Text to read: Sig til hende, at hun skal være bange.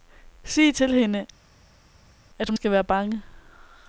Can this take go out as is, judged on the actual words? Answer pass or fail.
pass